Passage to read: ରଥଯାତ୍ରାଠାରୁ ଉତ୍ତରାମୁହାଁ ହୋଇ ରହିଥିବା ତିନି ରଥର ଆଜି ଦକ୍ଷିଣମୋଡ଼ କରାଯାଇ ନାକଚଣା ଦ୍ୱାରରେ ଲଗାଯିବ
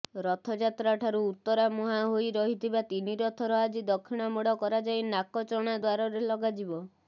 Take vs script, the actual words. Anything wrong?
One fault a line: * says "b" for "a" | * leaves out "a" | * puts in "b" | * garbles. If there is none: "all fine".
all fine